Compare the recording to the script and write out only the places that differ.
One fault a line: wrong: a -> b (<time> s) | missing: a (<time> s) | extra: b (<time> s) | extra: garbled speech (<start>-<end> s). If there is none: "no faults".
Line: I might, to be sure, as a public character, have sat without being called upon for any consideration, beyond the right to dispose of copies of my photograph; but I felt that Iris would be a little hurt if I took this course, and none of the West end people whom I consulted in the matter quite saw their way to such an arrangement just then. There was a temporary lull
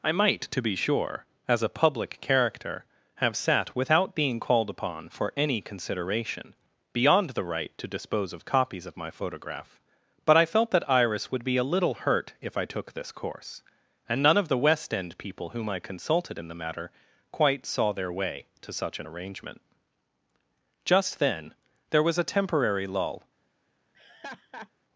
no faults